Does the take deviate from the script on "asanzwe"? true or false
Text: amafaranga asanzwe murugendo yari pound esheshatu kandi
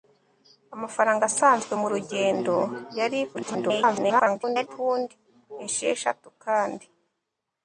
false